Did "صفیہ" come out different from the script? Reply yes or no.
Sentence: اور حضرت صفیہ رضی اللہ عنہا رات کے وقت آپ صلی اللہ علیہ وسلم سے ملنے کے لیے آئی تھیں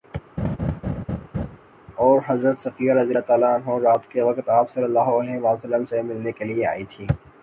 no